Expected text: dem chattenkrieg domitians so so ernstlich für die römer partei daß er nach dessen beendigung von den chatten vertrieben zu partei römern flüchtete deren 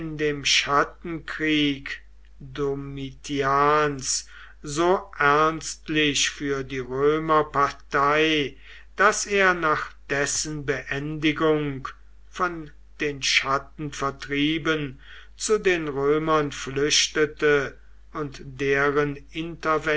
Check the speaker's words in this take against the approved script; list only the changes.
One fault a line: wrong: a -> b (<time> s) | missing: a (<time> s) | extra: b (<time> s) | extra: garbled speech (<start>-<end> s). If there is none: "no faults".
missing: so (5.1 s)
wrong: partei -> den (15.6 s)
extra: und (18.1 s)